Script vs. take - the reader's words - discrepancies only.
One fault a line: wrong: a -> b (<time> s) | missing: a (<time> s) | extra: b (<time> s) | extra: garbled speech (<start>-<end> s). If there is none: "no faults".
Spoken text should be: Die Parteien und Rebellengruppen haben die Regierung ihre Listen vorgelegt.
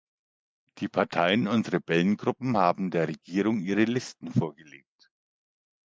wrong: die -> der (2.9 s)